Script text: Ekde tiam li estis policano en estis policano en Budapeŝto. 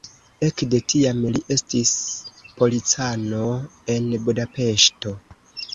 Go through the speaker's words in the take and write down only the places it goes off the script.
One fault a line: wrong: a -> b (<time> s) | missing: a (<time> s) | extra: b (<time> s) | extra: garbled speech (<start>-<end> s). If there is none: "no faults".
missing: estis policano en (4.1 s)